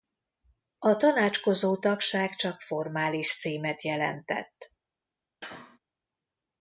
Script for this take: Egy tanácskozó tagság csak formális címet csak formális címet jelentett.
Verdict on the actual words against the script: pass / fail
fail